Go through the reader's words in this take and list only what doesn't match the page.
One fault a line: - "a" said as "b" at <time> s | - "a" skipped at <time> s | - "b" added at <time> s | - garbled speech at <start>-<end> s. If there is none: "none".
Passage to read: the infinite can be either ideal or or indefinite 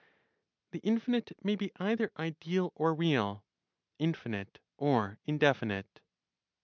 - "can" said as "may" at 1.4 s
- "real infinite" added at 3.0 s